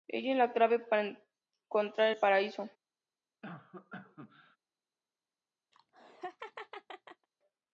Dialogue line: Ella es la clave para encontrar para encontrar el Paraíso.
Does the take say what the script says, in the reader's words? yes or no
no